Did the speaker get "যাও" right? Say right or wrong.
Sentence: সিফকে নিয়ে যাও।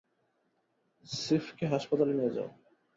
right